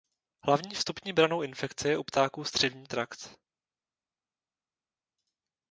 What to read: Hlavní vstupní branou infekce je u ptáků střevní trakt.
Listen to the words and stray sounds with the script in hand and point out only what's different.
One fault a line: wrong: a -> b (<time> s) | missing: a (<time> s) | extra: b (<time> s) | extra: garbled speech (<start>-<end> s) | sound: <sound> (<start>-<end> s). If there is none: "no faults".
no faults